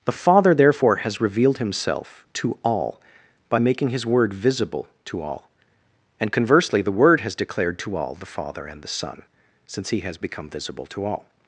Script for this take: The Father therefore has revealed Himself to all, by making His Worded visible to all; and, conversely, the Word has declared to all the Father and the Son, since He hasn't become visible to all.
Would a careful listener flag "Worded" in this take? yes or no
yes